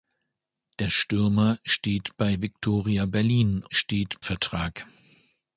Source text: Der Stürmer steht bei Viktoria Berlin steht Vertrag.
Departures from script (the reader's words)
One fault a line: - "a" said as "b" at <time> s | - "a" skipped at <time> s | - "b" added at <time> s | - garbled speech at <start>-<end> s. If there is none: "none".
none